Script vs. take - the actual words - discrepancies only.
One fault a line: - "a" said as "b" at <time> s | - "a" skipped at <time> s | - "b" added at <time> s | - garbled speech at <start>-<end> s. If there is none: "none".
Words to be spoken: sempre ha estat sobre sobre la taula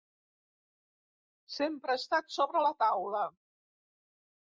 - "sobre" skipped at 2.6 s